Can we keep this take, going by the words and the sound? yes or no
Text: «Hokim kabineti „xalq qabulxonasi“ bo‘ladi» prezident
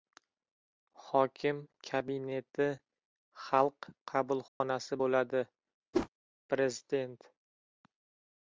no